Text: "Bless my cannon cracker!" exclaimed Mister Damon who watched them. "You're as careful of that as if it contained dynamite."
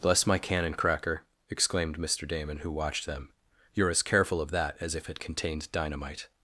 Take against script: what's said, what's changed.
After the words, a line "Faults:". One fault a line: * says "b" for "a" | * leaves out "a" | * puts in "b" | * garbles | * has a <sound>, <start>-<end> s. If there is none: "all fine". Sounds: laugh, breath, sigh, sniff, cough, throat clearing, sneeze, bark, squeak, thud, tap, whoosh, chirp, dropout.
"Bless my cannon cracker!" exclaimed Mister Damon who watched them. "You're as careful of that as if it contained dynamite."
Faults:
all fine